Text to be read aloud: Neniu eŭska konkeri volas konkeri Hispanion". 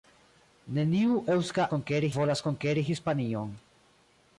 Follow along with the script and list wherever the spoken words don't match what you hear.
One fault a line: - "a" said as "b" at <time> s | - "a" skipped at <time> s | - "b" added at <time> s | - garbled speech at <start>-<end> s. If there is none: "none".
none